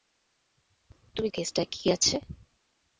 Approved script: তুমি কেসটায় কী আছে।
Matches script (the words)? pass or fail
pass